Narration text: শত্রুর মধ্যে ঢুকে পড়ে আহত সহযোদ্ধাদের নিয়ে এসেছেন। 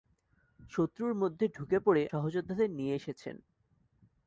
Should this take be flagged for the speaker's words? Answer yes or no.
yes